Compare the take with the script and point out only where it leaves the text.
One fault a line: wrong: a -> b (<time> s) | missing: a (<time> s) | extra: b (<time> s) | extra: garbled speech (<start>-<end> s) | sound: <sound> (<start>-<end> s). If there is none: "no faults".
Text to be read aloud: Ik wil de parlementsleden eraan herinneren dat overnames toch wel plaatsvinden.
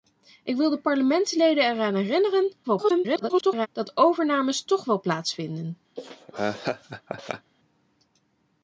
extra: garbled speech (2.6-3.7 s)
sound: laugh (6.0-7.5 s)